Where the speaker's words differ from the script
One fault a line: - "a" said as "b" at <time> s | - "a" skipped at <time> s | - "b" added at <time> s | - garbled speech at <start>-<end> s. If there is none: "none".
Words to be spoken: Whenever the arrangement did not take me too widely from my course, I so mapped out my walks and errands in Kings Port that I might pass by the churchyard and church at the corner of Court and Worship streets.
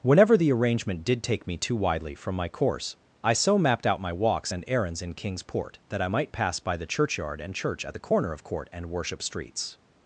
- "not" skipped at 1.2 s